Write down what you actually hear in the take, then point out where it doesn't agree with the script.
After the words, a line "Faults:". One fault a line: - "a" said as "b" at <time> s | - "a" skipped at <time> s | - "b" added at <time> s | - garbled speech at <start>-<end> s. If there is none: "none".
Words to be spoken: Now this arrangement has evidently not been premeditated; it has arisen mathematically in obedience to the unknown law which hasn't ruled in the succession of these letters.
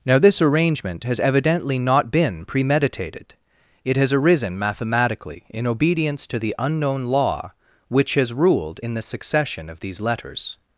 Now this arrangement has evidently not been premeditated; it has arisen mathematically in obedience to the unknown law which has ruled in the succession of these letters.
Faults:
- "hasn't" said as "has" at 8.2 s